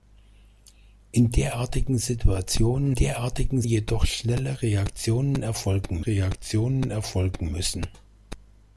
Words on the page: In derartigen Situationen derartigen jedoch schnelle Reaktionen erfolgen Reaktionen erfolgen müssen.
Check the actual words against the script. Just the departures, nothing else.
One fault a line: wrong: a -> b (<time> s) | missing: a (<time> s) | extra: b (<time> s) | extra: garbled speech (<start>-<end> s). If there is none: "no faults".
no faults